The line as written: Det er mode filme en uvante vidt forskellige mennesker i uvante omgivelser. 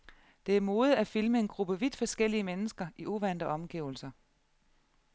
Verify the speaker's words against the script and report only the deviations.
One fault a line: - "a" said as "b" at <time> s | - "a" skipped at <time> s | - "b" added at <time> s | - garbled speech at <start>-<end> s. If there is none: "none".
- "at" added at 1.0 s
- "uvante" said as "gruppe" at 1.5 s